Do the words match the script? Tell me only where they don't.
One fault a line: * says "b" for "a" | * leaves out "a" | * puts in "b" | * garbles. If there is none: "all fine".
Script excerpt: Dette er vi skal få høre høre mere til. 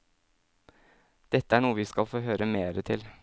* puts in "noe"
* leaves out "høre"